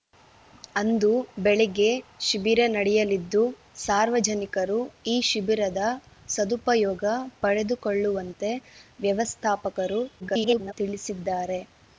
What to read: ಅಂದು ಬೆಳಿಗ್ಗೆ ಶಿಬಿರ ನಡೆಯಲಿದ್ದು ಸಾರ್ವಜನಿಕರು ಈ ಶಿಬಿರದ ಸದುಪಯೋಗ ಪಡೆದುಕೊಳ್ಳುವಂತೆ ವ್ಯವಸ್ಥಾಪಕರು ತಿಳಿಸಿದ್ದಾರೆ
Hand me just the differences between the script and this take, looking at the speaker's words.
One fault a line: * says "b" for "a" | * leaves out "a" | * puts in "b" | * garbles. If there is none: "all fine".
* garbles